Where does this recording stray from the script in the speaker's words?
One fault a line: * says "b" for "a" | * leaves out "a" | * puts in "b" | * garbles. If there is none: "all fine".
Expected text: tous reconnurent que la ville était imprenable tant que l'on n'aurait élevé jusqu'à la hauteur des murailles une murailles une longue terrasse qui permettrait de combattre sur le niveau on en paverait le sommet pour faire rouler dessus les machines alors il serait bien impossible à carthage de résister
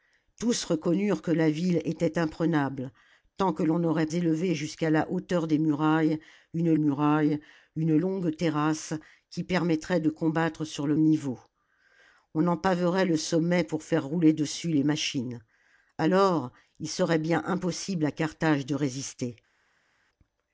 all fine